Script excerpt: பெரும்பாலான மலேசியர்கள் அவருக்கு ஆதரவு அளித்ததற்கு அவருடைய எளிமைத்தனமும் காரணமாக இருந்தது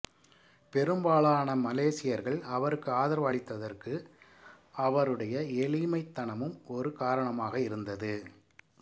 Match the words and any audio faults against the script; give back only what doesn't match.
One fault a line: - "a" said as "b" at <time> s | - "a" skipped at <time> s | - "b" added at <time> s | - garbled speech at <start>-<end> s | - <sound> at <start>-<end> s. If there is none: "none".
- "ஒரு" added at 6.7 s